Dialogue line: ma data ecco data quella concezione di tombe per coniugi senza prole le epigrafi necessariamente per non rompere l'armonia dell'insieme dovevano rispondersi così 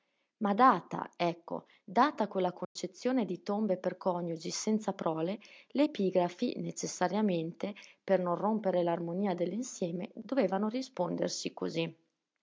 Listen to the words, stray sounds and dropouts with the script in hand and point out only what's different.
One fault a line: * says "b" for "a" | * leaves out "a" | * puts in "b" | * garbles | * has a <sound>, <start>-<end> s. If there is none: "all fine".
* has a dropout, 2.6-2.8 s